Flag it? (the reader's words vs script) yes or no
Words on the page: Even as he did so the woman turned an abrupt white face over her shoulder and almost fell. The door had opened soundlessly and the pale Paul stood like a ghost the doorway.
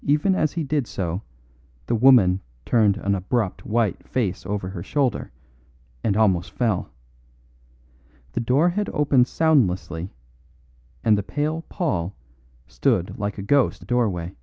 no